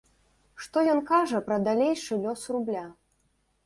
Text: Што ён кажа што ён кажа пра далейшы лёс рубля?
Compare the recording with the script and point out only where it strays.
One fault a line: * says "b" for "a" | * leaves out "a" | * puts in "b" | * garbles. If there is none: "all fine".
* leaves out "што ён кажа"